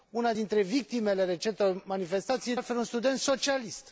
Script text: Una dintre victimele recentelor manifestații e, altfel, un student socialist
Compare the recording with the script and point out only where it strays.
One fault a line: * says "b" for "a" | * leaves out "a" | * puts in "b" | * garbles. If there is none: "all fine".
all fine